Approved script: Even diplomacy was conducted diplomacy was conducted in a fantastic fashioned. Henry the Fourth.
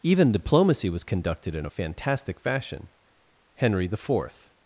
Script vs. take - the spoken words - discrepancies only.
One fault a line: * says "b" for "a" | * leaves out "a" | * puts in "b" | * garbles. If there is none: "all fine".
* leaves out "diplomacy was conducted"
* says "fashion" for "fashioned"